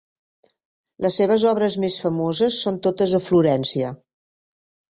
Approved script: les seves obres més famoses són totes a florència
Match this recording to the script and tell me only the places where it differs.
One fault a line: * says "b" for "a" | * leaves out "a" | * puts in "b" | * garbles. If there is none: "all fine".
all fine